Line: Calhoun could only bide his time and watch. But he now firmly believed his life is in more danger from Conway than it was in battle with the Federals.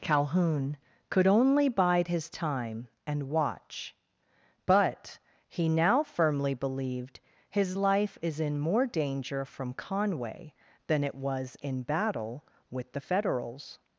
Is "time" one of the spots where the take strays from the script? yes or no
no